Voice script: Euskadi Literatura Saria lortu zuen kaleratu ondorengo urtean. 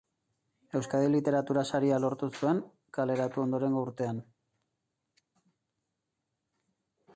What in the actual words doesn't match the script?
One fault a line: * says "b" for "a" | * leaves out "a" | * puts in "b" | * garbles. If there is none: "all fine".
all fine